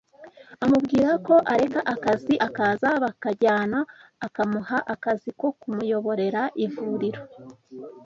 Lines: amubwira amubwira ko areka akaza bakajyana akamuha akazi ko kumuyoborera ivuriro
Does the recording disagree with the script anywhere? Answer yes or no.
yes